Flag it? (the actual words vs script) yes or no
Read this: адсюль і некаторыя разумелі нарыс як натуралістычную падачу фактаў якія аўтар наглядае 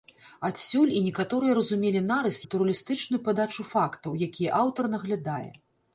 yes